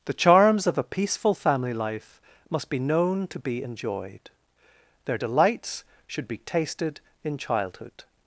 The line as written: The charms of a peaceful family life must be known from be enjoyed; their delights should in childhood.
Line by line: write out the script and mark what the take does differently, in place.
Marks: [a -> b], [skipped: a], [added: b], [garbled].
The charms of a peaceful family life must be known [from -> to] be enjoyed; their delights should [added: be tasted] in childhood.